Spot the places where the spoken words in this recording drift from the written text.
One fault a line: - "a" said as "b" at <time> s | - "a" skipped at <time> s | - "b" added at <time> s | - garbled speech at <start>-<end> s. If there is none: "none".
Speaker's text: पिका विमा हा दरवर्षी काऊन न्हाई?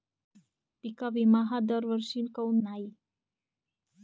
none